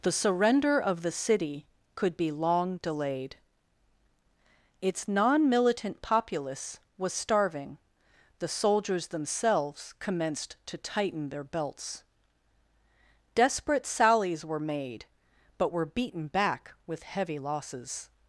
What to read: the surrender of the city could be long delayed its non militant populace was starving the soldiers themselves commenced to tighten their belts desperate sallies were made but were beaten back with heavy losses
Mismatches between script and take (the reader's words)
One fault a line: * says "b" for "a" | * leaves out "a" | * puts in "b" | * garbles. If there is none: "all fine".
all fine